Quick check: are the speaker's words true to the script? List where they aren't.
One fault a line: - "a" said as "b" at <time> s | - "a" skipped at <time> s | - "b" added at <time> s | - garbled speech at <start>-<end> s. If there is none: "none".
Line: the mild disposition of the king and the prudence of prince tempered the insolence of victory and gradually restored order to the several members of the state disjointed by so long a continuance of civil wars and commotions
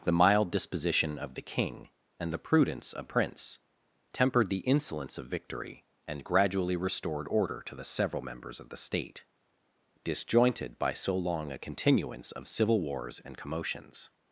none